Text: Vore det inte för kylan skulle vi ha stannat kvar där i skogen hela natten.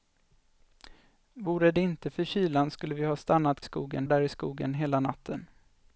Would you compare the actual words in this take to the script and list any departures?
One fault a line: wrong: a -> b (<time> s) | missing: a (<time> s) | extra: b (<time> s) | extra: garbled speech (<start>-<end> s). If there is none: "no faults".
wrong: kvar -> skogen (3.6 s)